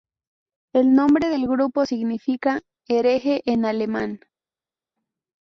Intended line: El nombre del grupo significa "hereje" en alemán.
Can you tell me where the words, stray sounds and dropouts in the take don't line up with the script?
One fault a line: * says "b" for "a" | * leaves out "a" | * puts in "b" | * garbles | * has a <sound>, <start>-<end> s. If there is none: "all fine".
all fine